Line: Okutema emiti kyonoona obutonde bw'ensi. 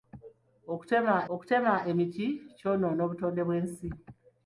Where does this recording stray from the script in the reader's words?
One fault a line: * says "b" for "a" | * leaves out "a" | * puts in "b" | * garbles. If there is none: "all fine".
* puts in "okutema"